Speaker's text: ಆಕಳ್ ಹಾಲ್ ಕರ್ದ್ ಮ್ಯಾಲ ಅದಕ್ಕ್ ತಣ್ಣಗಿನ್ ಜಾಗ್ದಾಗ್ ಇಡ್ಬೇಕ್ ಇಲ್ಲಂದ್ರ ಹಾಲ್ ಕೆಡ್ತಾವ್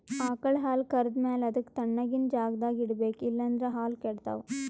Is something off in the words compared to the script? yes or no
no